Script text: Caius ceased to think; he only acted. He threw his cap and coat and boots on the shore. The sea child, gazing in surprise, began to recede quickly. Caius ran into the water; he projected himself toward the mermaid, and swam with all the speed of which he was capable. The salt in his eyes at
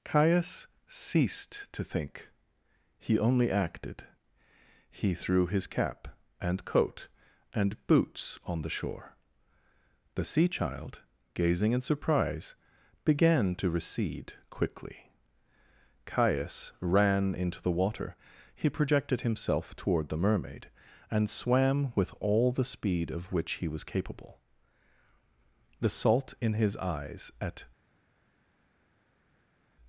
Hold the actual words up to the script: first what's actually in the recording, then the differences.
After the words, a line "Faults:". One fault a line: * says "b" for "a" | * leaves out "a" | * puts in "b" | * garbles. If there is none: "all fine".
Caius ceased to think; he only acted. He threw his cap and coat and boots on the shore. The sea child, gazing in surprise, began to recede quickly. Caius ran into the water; he projected himself toward the mermaid, and swam with all the speed of which he was capable. The salt in his eyes at
Faults:
all fine